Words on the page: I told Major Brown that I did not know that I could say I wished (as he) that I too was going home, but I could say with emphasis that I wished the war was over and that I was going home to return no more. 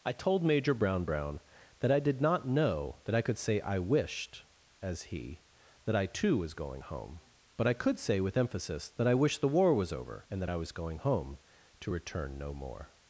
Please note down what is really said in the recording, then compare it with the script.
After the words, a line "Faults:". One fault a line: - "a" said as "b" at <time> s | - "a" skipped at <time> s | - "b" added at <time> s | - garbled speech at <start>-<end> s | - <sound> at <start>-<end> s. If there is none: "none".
I told Major Brown Brown that I did not know that I could say I wished (as he) that I too was going home, but I could say with emphasis that I wished the war was over and that I was going home to return no more.
Faults:
- "Brown" added at 1.1 s